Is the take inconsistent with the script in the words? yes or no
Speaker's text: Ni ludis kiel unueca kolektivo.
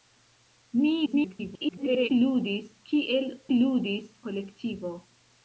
yes